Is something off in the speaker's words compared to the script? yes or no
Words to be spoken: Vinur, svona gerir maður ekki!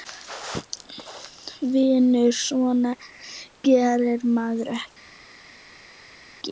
no